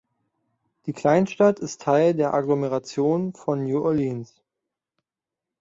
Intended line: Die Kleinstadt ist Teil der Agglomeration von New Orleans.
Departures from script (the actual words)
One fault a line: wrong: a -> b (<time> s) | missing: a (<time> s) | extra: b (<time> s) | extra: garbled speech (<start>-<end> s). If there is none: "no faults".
no faults